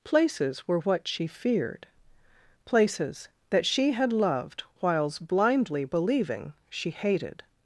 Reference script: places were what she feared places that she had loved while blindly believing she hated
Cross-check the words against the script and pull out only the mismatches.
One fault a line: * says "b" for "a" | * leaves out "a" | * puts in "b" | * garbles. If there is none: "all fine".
* says "whiles" for "while"